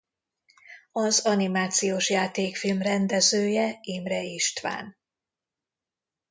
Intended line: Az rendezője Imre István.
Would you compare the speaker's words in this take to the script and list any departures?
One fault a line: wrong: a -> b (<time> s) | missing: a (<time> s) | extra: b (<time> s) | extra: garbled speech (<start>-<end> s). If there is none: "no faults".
extra: animációs játékfilm (1.2 s)